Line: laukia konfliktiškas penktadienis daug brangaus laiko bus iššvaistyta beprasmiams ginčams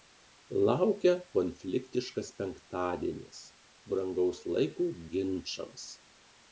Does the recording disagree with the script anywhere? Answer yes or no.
yes